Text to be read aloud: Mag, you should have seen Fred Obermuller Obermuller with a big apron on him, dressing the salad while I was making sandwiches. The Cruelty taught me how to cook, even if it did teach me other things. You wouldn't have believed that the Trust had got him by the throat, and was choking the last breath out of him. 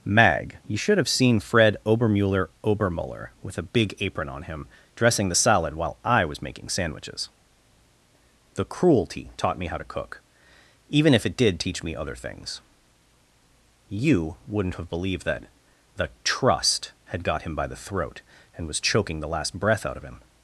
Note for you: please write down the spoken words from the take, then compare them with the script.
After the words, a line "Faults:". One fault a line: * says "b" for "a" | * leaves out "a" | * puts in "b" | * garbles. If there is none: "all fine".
Mag, you should have seen Fred Obermuller Obermuller with a big apron on him, dressing the salad while I was making sandwiches. The Cruelty taught me how to cook, even if it did teach me other things. You wouldn't have believed that the Trust had got him by the throat, and was choking the last breath out of him.
Faults:
all fine